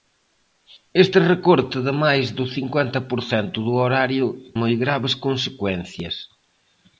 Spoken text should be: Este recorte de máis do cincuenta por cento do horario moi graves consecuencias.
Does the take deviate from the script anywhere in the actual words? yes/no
no